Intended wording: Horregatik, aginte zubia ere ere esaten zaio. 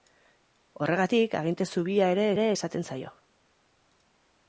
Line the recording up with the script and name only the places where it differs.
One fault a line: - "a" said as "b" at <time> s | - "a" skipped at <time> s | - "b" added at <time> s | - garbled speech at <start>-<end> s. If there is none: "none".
none